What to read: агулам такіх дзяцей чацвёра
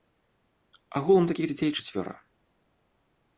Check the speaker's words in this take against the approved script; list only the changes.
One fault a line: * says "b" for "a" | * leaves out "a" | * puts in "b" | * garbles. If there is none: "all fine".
all fine